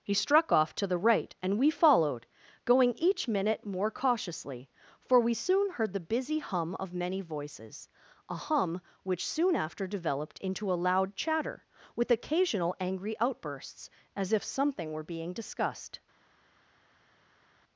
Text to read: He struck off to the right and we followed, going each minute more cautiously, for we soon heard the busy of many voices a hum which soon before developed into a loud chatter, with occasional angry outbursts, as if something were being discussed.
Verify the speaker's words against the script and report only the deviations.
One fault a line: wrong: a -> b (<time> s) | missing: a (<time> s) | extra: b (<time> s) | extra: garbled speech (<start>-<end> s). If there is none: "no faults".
extra: hum (6.4 s)
wrong: before -> after (9.6 s)